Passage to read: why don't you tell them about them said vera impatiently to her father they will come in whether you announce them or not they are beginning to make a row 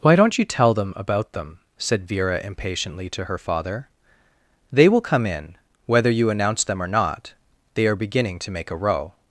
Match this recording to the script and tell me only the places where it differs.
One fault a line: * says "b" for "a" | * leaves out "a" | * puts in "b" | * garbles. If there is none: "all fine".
all fine